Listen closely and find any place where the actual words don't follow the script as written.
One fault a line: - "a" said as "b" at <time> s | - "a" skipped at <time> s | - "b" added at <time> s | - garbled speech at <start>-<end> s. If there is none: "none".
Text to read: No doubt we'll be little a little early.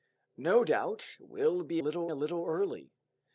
none